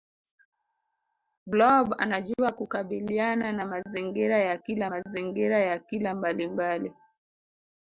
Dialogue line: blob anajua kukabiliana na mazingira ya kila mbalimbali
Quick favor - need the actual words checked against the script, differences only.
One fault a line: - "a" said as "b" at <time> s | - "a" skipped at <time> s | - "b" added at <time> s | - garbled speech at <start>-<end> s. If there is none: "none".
- "mazingira ya kila" added at 4.9 s